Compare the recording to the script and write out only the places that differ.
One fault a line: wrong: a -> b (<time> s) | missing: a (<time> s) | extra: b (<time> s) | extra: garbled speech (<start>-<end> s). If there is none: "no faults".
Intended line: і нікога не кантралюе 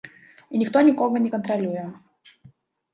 extra: ніхто (0.6 s)